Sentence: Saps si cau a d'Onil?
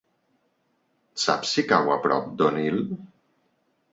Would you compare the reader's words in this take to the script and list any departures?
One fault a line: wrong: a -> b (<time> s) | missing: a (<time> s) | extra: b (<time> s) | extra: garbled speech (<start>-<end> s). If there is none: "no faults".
extra: prop (2.1 s)